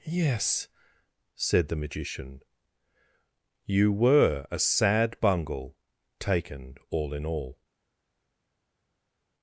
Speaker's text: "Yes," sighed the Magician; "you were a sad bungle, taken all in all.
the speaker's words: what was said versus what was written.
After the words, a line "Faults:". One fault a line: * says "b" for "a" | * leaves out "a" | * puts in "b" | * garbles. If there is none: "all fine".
"Yes," said the Magician; "you were a sad bungle, taken all in all.
Faults:
* says "said" for "sighed"